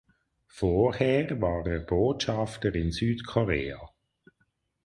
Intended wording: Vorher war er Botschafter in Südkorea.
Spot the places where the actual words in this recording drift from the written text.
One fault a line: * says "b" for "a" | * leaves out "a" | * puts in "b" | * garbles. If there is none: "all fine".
all fine